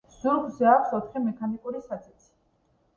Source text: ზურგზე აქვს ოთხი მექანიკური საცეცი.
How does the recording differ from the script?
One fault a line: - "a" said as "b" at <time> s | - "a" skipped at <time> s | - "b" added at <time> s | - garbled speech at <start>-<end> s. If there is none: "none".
none